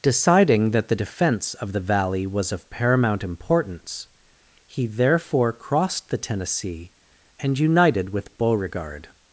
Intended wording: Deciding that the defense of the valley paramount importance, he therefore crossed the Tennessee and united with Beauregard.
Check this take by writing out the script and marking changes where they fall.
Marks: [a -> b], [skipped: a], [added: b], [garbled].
Deciding that the defense of the valley [added: was of] paramount importance, he therefore crossed the Tennessee and united with Beauregard.